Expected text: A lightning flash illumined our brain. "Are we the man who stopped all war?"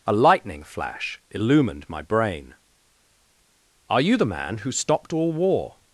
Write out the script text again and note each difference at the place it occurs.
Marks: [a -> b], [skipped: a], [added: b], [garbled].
A lightning flash illumined [our -> my] brain. "Are [we -> you] the man who stopped all war?"